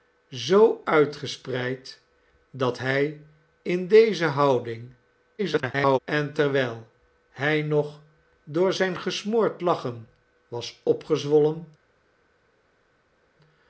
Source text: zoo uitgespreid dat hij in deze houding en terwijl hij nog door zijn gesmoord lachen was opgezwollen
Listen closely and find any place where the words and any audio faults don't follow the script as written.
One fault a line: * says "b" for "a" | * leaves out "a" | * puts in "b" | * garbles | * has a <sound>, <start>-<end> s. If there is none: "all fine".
* garbles